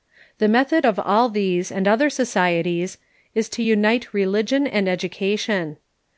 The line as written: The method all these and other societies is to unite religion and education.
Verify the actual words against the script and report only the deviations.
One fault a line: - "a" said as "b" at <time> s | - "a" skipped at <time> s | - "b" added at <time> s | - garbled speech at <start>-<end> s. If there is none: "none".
- "of" added at 0.9 s